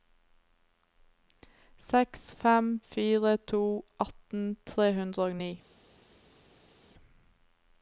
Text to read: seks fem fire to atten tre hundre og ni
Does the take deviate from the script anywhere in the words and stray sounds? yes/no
no